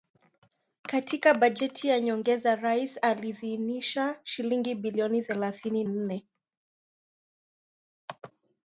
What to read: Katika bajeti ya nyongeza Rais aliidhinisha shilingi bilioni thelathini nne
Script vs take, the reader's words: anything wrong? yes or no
no